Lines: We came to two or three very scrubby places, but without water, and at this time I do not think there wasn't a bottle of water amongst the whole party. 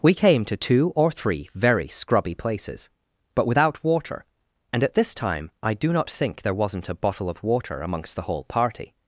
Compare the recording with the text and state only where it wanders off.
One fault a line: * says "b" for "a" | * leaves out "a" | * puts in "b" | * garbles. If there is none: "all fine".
all fine